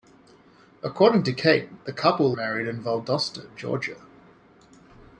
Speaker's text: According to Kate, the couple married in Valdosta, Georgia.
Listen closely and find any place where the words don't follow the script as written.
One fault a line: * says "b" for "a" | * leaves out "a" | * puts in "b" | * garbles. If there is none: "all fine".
all fine